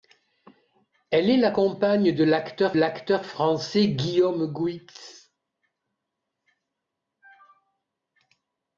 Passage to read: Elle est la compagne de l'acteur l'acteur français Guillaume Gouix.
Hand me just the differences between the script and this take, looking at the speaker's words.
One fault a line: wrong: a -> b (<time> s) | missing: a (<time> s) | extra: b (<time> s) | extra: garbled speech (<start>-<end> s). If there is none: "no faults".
no faults